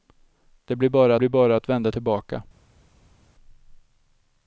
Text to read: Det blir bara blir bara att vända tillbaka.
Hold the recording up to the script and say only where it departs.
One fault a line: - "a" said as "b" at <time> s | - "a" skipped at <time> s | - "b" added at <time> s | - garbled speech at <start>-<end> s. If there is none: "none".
none